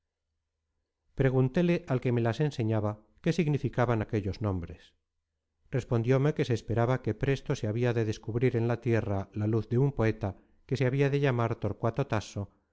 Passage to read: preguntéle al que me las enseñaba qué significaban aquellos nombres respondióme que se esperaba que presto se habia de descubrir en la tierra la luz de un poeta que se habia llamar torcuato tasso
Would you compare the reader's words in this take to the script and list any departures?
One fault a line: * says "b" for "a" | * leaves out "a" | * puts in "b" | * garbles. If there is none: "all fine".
* puts in "de"